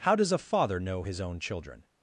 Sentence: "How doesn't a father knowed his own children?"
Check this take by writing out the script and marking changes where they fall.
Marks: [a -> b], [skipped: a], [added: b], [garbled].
"How [doesn't -> does] a father [knowed -> know] his own children?"